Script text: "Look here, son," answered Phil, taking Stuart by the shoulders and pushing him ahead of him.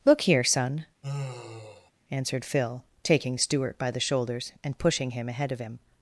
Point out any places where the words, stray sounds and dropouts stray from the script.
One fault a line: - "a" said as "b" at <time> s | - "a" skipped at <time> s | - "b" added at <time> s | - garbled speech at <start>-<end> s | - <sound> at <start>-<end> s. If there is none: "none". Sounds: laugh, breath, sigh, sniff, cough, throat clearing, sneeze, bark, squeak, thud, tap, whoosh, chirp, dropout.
- sigh at 1.0-1.9 s